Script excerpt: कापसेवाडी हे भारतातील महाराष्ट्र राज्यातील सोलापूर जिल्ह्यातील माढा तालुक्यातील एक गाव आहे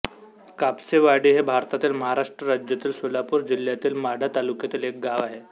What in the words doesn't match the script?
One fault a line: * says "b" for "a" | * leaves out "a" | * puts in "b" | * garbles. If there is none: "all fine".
all fine